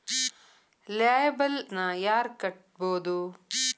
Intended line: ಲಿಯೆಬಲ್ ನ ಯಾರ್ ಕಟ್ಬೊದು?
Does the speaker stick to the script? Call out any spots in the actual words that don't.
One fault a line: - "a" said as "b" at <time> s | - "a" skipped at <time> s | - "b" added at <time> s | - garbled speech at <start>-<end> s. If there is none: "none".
none